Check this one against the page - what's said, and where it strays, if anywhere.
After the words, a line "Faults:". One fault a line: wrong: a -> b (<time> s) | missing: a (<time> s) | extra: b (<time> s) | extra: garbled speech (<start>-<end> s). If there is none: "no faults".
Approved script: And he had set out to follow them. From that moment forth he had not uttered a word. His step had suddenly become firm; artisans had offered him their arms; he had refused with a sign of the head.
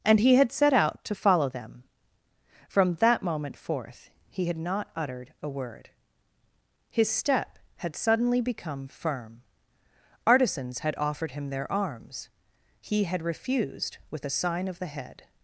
And he had set out to follow them. From that moment forth he had not uttered a word. His step had suddenly become firm; artisans had offered him their arms; he had refused with a sign of the head.
Faults:
no faults